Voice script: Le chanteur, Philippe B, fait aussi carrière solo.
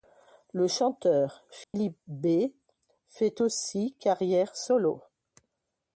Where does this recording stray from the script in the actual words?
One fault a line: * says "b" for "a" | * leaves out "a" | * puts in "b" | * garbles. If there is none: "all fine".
all fine